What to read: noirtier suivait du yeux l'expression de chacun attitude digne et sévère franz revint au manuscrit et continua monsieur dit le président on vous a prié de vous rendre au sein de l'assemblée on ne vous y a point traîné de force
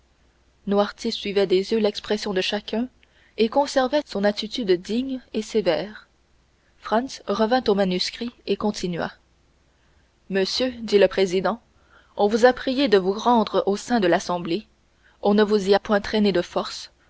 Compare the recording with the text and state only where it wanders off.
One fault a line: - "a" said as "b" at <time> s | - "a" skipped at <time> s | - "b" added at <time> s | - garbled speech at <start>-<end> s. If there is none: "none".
- "du" said as "des" at 1.4 s
- "et conservait son" added at 3.4 s